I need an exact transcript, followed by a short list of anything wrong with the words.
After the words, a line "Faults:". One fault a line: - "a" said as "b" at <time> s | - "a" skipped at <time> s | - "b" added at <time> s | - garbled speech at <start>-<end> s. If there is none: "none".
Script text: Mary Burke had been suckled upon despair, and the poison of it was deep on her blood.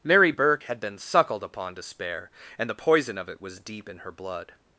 Mary Burke had been suckled upon despair, and the poison of it was deep in her blood.
Faults:
- "on" said as "in" at 3.9 s